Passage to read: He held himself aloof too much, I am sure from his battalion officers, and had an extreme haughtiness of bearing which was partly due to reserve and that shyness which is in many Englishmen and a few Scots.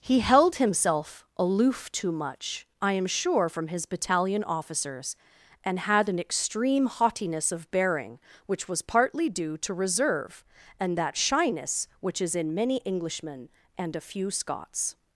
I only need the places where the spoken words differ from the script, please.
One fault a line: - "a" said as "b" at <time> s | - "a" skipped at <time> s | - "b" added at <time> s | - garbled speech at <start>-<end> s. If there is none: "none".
none